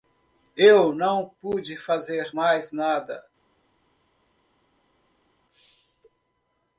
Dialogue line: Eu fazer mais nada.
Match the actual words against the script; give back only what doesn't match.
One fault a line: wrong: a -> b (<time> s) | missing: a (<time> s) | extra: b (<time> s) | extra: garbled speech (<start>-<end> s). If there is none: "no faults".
extra: não pude (0.9 s)